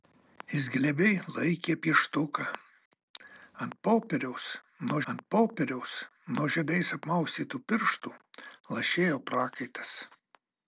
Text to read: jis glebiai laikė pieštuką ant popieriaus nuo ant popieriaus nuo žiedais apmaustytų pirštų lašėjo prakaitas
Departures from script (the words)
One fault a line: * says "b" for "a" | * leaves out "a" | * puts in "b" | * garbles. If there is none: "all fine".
all fine